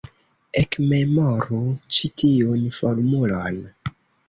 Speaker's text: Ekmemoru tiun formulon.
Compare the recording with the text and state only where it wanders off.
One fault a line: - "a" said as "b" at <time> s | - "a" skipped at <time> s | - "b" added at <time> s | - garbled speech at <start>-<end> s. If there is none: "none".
- "ĉi" added at 2.0 s